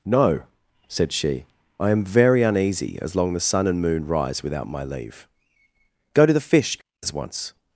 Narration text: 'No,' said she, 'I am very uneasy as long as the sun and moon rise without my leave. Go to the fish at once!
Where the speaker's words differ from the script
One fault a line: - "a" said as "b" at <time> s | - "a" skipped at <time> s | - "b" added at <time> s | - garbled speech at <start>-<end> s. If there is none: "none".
- "as" skipped at 3.3 s
- "at" said as "as" at 7.0 s